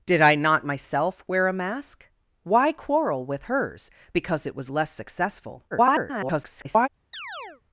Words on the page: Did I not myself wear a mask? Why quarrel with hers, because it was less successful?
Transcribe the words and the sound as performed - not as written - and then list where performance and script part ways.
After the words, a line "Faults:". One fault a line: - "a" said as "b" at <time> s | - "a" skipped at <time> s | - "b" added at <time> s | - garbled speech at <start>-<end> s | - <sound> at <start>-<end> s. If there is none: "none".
Did I not myself wear a mask? Why quarrel with hers, because it was less successful? [garbled]
Faults:
- garbled speech at 5.7-6.9 s
- chirp at 7.1-7.6 s